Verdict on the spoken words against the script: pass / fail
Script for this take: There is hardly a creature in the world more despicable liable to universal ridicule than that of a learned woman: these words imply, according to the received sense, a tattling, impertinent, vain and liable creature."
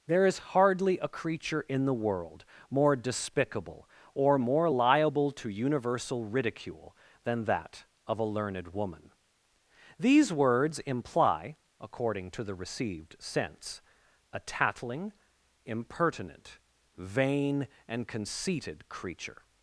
fail